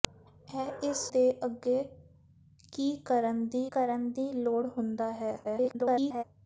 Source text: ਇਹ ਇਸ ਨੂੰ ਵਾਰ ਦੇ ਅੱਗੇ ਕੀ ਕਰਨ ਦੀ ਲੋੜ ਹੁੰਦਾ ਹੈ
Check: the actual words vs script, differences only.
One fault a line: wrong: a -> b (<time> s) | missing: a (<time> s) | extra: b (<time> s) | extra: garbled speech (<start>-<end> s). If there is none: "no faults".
missing: ਨੂੰ ਵਾਰ (1.0 s)
extra: ਕਰਨ ਦੀ (3.7 s)
extra: garbled speech (5.4-6.2 s)